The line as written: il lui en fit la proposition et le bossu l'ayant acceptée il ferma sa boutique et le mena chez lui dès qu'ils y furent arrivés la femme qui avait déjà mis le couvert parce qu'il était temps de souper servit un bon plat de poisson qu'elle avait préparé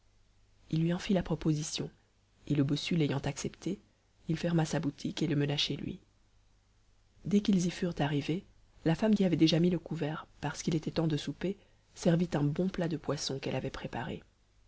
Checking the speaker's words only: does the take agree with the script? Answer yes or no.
yes